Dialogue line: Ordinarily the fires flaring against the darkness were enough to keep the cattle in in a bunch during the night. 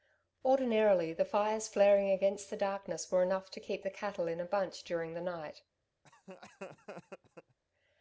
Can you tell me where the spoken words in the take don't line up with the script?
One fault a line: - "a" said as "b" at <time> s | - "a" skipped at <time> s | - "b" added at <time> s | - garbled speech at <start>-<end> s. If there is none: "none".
- "in" skipped at 4.4 s